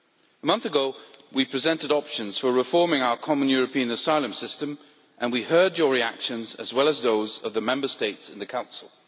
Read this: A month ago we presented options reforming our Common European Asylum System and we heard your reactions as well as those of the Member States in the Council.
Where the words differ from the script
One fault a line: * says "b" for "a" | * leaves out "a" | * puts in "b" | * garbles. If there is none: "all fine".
* puts in "for"